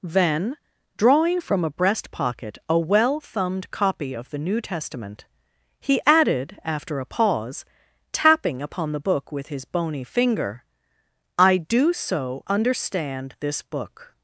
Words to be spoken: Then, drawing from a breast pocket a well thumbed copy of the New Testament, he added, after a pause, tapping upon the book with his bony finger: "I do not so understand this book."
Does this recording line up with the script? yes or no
no